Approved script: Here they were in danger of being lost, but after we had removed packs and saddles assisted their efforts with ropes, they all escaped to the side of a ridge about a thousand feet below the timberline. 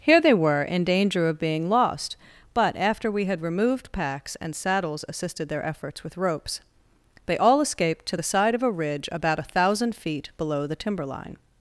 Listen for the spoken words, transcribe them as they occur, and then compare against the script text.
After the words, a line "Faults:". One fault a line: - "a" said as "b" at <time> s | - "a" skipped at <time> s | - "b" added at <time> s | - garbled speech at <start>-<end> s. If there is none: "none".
Here they were in danger of being lost, but after we had removed packs and saddles assisted their efforts with ropes, they all escaped to the side of a ridge about a thousand feet below the timberline.
Faults:
none